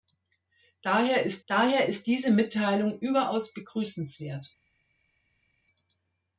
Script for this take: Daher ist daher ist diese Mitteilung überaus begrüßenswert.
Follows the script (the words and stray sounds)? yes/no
yes